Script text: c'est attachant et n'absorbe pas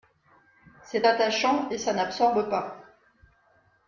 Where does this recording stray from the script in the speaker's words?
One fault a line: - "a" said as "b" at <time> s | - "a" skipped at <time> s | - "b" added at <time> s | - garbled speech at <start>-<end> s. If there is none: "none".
- "ça" added at 1.8 s